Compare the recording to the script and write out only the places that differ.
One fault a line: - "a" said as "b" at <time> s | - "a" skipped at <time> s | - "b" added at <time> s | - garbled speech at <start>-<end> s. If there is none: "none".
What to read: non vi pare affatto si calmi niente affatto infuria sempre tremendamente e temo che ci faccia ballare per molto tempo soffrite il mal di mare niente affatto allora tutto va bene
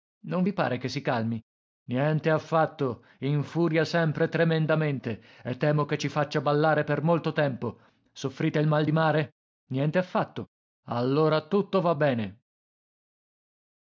- "affatto" said as "che" at 0.8 s